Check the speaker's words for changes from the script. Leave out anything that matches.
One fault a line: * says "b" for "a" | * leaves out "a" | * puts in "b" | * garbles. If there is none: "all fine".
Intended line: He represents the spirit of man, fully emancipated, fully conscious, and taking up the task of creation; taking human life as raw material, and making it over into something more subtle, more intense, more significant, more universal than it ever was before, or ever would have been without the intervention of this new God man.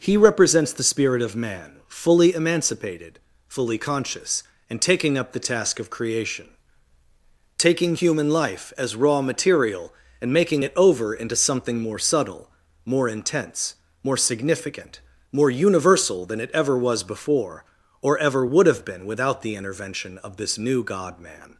all fine